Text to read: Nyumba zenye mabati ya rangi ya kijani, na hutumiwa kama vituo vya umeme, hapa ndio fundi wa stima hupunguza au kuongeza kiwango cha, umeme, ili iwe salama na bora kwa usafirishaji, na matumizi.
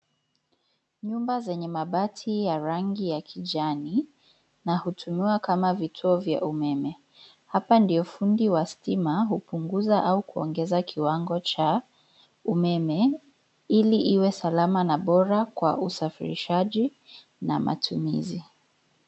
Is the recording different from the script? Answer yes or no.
no